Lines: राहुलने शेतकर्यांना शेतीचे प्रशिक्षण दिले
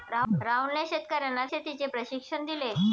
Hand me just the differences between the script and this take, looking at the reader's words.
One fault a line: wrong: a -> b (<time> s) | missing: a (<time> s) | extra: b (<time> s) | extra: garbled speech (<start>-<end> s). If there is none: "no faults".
no faults